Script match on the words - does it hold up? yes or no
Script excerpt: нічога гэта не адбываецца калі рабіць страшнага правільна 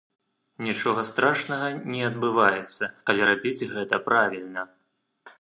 no